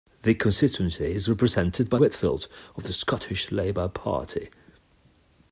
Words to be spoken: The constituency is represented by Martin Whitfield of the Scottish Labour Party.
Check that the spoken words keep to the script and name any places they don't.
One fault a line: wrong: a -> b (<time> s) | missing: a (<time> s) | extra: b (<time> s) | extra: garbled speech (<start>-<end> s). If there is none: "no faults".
missing: Martin (2.0 s)